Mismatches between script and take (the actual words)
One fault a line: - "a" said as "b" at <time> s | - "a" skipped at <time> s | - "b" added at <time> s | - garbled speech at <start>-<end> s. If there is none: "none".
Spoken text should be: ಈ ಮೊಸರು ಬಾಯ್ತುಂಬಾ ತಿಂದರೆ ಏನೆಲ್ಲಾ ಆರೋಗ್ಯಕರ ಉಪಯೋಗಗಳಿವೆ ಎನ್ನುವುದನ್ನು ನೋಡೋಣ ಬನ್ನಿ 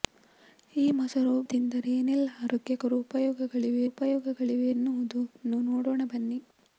- "ಬಾಯ್ತುಂಬಾ" skipped at 1.3 s
- "ಉಪಯೋಗಗಳಿವೆ" added at 3.9 s